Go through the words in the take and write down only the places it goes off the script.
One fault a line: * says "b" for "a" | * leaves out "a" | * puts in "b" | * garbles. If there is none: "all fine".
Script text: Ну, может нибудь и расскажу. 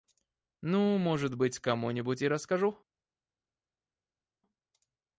* puts in "быть кому"